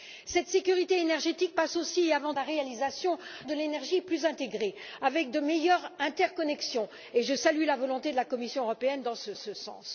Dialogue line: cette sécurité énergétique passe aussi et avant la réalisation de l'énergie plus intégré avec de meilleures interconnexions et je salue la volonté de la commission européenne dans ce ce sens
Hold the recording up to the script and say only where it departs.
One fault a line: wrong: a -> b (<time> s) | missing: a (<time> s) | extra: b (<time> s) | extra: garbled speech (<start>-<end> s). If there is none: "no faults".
no faults